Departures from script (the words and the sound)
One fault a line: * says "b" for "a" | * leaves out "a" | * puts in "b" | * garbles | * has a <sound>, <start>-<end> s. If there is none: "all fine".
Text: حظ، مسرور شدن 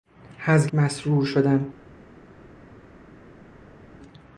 all fine